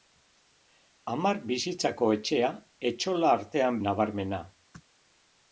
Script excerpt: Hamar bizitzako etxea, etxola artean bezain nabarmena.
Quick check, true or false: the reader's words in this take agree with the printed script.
false